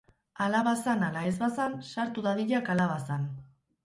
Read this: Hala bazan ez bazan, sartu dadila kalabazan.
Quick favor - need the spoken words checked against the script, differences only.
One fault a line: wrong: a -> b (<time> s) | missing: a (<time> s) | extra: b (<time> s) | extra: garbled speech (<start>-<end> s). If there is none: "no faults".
extra: ala (1.1 s)